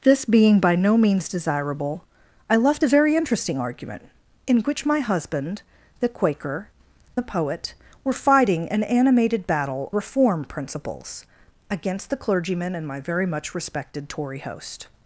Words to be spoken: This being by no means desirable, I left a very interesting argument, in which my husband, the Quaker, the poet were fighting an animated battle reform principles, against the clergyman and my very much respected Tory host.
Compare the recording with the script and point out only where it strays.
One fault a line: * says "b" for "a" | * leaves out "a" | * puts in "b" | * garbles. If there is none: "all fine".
all fine